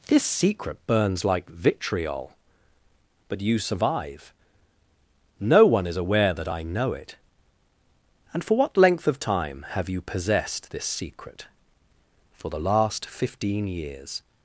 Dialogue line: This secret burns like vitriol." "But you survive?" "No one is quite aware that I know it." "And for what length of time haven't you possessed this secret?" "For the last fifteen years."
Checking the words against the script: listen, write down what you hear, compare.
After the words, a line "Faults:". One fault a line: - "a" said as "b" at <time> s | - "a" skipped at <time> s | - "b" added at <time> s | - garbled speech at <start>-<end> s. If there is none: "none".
This secret burns like vitriol." "But you survive?" "No one is aware that I know it." "And for what length of time have you possessed this secret?" "For the last fifteen years."
Faults:
- "quite" skipped at 6.0 s
- "haven't" said as "have" at 9.7 s